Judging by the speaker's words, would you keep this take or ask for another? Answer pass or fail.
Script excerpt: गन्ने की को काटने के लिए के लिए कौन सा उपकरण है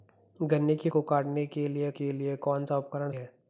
pass